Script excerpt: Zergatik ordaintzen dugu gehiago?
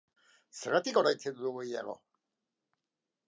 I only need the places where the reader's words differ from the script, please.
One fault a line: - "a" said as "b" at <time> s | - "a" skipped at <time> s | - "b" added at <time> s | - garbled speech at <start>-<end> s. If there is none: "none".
none